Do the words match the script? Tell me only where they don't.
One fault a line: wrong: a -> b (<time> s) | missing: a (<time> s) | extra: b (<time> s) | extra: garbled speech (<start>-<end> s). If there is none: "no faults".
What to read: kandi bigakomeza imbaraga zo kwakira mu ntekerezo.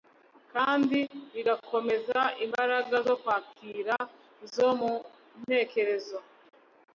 extra: zo (4.5 s)